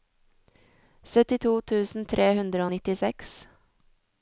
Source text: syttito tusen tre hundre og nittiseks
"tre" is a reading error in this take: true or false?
false